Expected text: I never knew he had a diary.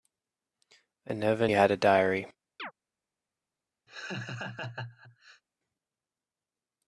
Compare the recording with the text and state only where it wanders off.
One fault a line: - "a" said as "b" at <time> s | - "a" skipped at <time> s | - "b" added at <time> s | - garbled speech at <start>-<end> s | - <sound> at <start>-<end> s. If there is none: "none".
- "knew he" skipped at 1.5 s
- chirp at 2.6-2.7 s
- laugh at 3.9-5.4 s